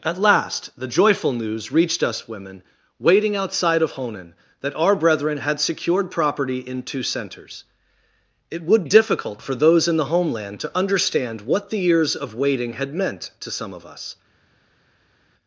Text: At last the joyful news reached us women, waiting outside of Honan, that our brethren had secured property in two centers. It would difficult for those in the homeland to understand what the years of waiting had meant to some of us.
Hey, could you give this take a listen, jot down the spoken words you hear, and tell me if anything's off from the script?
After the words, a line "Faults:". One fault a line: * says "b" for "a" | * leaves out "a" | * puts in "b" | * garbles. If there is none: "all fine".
At last the joyful news reached us women, waiting outside of Honan, that our brethren had secured property in two centers. It would difficult for those in the homeland to understand what the years of waiting had meant to some of us.
Faults:
all fine